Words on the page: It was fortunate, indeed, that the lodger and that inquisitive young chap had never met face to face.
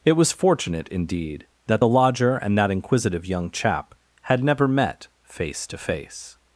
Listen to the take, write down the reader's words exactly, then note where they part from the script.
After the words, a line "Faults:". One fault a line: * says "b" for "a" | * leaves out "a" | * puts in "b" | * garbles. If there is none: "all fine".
It was fortunate, indeed, that the lodger and that inquisitive young chap had never met face to face.
Faults:
all fine